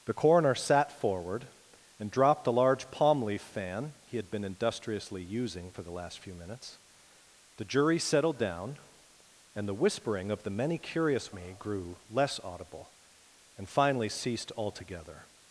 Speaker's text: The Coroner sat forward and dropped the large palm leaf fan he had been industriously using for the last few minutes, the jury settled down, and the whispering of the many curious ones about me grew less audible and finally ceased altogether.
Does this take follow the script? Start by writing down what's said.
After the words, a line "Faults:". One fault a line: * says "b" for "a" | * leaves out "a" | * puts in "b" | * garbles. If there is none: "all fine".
The Coroner sat forward and dropped the large palm leaf fan he had been industriously using for the last few minutes, the jury settled down, and the whispering of the many curious me grew less audible and finally ceased altogether.
Faults:
* leaves out "ones about"